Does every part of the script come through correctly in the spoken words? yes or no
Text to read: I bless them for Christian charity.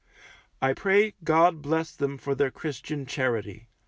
no